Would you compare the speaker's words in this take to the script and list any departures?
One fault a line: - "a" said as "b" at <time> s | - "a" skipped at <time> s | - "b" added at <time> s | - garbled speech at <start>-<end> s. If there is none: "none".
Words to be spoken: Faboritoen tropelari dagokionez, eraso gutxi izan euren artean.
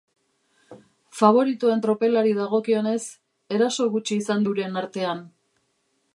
none